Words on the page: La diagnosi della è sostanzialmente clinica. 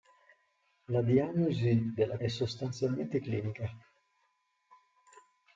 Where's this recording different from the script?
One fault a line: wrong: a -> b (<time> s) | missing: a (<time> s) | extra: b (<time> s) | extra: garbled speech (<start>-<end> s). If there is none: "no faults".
no faults